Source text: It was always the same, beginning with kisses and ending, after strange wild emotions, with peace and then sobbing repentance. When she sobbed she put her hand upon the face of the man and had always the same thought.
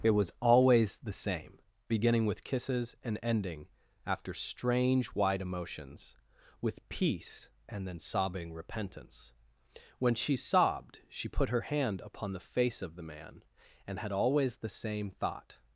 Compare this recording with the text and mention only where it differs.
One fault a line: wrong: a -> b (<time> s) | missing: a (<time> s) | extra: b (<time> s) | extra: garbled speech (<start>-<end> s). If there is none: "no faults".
wrong: wild -> wide (5.1 s)